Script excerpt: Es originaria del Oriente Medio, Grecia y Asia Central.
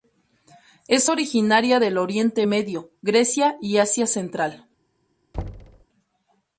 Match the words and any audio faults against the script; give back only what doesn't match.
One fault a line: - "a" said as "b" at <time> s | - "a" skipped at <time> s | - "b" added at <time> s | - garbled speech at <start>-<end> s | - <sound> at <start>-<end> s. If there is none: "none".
- thud at 5.3-5.9 s